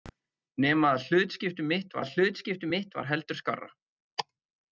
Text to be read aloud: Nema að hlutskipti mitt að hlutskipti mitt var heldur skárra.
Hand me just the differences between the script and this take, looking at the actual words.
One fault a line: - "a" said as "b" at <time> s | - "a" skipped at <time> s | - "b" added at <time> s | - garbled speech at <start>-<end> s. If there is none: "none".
none